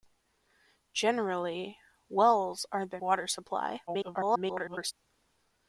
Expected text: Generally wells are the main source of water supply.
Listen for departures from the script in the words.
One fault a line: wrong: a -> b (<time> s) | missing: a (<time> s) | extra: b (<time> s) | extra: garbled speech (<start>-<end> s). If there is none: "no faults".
missing: main source of (3.0 s)
extra: garbled speech (3.9-4.9 s)